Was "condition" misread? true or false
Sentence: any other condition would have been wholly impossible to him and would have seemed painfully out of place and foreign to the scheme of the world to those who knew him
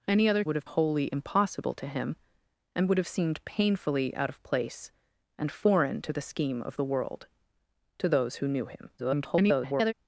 true